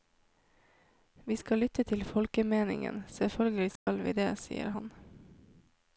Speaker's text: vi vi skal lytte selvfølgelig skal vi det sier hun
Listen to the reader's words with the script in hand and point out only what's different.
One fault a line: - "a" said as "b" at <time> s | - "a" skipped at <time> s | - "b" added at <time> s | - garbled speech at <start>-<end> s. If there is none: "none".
- "vi" skipped at 1.4 s
- "til folkemeningen" added at 1.8 s
- "hun" said as "han" at 4.8 s